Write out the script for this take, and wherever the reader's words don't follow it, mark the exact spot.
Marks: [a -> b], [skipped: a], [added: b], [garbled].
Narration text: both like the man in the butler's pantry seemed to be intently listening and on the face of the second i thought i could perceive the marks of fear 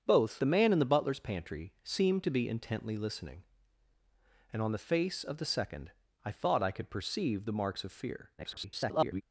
both [skipped: like] the man in the butler's pantry seemed to be intently listening and on the face of the second i thought i could perceive the marks of fear [garbled]